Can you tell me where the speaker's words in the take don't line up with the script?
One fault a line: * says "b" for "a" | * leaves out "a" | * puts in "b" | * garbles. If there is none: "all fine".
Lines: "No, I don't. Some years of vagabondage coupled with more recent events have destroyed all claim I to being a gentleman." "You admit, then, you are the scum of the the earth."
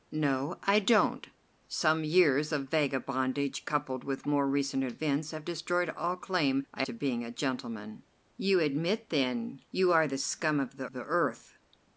all fine